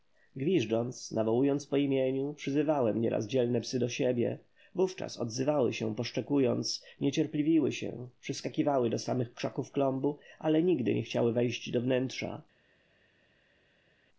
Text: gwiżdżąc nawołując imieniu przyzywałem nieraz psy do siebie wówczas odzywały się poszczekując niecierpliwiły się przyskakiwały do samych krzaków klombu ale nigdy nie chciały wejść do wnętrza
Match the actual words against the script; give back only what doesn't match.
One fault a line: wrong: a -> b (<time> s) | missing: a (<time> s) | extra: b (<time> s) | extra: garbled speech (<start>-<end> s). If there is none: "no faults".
extra: po (1.7 s)
extra: dzielne (3.3 s)